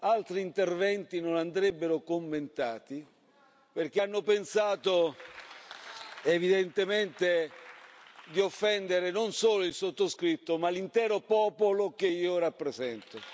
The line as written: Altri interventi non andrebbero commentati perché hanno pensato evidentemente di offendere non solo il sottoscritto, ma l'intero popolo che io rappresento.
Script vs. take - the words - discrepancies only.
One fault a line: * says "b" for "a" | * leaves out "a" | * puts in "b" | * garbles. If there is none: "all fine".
all fine